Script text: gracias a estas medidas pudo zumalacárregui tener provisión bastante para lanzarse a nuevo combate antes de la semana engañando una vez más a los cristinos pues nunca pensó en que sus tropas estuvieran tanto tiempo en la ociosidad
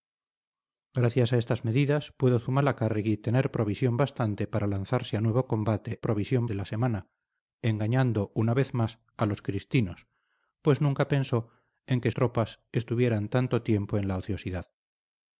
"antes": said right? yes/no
no